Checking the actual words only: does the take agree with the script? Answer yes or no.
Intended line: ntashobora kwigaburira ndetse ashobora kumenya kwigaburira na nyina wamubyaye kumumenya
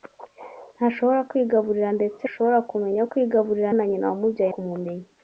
yes